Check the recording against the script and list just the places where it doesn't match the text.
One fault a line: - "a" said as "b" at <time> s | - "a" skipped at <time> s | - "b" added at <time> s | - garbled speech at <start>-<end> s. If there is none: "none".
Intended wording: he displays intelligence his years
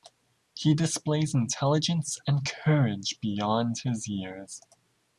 - "and courage beyond" added at 2.3 s